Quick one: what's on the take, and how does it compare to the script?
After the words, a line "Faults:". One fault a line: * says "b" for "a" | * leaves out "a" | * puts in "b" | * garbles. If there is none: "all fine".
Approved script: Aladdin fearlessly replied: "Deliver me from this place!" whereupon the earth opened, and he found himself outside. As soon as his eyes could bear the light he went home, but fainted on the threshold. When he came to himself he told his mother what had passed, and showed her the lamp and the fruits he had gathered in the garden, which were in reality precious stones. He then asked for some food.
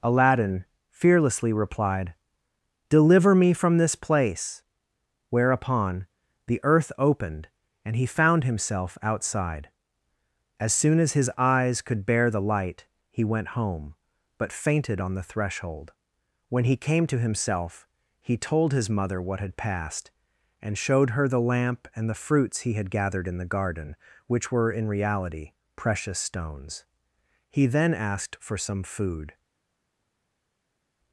Aladdin fearlessly replied: "Deliver me from this place!" whereupon the earth opened, and he found himself outside. As soon as his eyes could bear the light he went home, but fainted on the threshold. When he came to himself he told his mother what had passed, and showed her the lamp and the fruits he had gathered in the garden, which were in reality precious stones. He then asked for some food.
Faults:
all fine